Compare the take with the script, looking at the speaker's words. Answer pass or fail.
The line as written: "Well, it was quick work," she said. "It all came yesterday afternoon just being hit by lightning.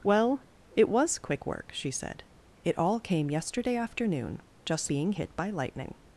pass